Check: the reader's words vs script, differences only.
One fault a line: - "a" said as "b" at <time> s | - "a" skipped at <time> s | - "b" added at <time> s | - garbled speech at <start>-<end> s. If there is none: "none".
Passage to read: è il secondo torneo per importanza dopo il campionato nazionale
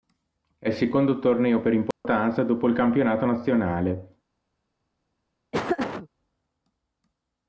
none